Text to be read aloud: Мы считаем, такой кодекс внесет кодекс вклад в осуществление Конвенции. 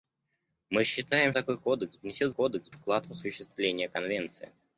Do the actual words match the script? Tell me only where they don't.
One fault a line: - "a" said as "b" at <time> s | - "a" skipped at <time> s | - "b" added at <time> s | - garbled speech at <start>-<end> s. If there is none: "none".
none